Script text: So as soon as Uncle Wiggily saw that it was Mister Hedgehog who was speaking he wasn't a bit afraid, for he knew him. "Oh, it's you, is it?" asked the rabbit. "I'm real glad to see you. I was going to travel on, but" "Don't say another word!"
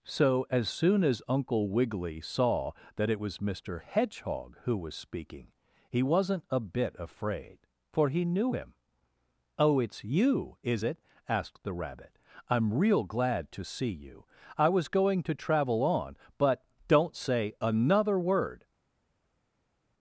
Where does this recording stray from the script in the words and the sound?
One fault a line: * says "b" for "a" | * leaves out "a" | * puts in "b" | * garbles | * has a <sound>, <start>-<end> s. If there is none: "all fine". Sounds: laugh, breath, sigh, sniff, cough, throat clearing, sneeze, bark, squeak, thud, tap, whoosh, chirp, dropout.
all fine